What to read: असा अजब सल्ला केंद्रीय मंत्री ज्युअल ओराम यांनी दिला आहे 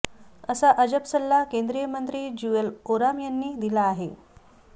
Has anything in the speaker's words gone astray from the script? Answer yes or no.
no